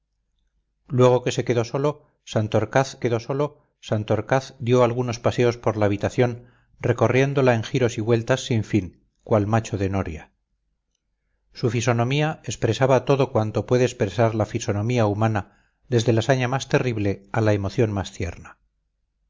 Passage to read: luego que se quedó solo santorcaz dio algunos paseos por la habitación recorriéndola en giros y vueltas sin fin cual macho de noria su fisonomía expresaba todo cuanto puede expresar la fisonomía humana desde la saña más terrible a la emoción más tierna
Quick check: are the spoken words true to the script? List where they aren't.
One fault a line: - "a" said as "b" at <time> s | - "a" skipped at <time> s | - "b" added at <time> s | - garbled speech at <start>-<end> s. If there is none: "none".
- "quedó solo santorcaz" added at 3.0 s